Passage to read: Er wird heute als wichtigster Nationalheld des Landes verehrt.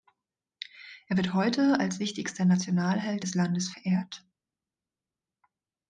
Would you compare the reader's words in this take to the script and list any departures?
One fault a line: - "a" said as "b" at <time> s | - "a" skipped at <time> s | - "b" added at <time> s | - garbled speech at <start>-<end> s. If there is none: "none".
none